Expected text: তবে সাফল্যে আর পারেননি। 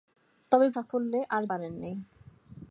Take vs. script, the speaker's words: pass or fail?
pass